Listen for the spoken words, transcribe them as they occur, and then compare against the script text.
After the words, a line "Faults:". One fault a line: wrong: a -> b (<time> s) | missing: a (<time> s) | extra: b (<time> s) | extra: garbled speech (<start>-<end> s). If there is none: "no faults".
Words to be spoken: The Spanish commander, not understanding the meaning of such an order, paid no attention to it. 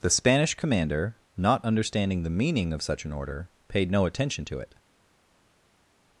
The Spanish commander, not understanding the meaning of such an order, paid no attention to it.
Faults:
no faults